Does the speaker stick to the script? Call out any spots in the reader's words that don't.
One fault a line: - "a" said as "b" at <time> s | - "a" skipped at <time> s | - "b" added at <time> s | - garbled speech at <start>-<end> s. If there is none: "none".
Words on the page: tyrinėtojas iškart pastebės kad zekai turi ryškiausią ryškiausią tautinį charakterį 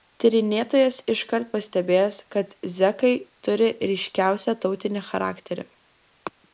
- "ryškiausią" skipped at 4.6 s